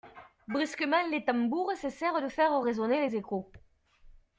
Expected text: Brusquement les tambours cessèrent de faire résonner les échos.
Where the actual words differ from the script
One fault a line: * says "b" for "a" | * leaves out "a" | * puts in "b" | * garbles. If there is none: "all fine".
all fine